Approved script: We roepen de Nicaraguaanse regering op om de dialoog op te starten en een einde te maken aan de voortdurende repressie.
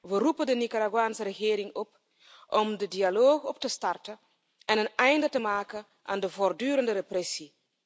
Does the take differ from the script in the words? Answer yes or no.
no